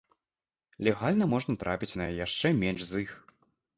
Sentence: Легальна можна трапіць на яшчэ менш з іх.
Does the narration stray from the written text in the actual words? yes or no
no